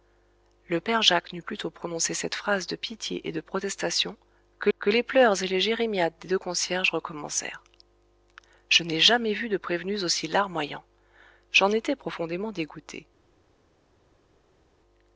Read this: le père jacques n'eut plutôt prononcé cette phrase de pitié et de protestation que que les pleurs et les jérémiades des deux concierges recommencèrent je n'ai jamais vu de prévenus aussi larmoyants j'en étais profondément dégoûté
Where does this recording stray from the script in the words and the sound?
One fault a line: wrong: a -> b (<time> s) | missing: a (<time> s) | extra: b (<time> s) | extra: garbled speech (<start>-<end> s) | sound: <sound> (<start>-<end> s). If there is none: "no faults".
no faults